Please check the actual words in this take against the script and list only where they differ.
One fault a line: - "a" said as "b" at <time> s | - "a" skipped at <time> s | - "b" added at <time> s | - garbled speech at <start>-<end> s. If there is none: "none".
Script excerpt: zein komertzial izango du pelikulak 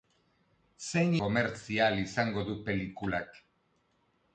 none